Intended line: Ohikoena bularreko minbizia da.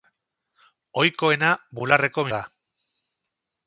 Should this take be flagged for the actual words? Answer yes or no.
yes